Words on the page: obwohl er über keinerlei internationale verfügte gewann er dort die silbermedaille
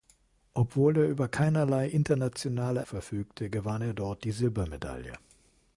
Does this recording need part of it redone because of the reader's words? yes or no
no